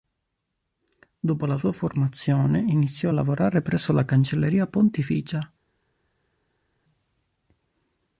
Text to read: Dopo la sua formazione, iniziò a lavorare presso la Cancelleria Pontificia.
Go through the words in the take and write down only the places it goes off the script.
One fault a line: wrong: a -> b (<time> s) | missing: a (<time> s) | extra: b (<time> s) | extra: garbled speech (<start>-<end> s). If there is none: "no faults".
no faults